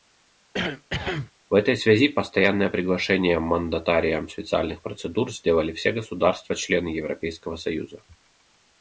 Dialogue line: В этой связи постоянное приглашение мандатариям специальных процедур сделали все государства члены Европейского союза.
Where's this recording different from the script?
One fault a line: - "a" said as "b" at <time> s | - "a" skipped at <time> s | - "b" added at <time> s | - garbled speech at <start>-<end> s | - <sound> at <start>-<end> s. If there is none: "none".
- cough at 0.5-1.3 s